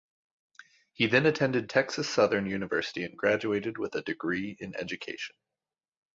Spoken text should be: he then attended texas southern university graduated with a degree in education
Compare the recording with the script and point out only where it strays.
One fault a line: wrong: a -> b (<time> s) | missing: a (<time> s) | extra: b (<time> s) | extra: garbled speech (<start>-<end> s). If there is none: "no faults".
extra: and (3.0 s)